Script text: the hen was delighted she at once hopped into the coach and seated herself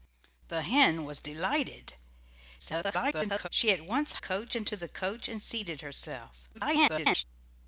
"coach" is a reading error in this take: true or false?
false